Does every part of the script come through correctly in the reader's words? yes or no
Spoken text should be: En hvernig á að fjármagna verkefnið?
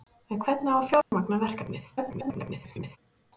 no